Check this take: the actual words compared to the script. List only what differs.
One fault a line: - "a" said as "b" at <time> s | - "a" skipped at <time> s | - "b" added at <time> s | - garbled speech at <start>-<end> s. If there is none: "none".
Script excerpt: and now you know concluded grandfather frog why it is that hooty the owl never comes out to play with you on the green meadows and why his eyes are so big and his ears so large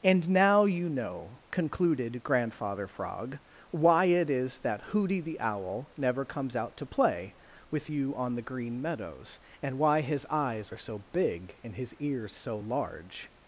none